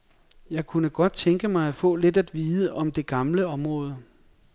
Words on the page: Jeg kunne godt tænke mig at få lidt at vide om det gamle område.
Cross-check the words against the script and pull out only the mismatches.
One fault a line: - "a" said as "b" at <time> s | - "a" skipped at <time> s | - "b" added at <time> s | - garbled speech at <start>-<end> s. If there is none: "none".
none